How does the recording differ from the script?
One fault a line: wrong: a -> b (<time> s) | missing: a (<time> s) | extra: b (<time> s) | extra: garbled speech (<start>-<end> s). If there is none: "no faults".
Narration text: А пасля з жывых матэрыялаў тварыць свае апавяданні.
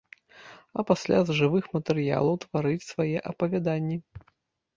no faults